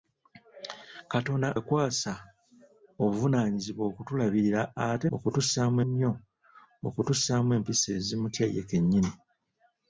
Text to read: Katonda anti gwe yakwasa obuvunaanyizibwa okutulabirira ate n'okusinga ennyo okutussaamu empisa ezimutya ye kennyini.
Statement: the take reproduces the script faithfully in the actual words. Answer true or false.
false